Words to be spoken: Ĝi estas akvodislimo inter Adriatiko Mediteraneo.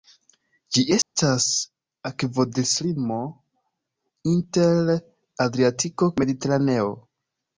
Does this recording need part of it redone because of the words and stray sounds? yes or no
yes